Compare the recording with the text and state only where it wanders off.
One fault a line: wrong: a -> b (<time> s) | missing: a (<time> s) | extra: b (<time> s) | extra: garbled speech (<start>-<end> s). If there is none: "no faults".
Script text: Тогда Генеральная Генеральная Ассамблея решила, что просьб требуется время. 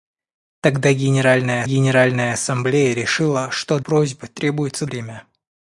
no faults